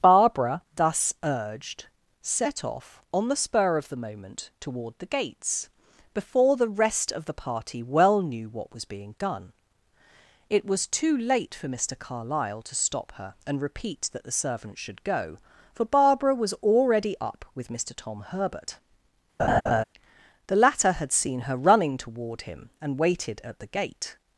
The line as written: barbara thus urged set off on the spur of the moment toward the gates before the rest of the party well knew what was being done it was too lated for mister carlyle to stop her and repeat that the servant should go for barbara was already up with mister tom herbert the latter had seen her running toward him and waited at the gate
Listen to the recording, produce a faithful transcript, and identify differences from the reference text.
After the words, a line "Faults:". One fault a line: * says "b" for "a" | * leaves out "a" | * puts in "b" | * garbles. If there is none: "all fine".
barbara thus urged set off on the spur of the moment toward the gates before the rest of the party well knew what was being done it was too late for mister carlyle to stop her and repeat that the servant should go for barbara was already up with mister tom herbert the latter had seen her running toward him and waited at the gate
Faults:
* says "late" for "lated"